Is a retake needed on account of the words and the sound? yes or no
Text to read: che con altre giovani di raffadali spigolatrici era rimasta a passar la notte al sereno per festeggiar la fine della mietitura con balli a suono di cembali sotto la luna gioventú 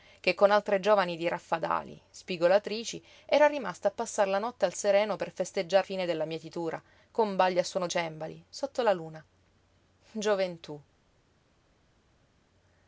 yes